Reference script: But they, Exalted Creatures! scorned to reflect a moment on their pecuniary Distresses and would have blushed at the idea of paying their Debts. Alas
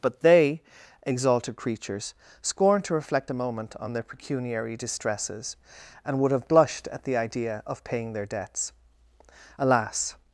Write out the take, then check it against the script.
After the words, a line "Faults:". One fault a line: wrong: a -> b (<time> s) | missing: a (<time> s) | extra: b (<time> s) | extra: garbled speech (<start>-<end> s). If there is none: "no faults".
But they, Exalted Creatures! scorned to reflect a moment on their pecuniary Distresses and would have blushed at the idea of paying their Debts. Alas
Faults:
no faults